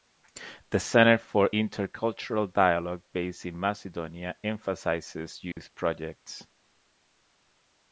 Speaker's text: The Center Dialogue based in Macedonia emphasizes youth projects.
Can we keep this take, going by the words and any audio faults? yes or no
no